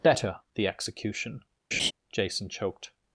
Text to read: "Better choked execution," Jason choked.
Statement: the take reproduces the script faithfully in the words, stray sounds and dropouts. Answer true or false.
false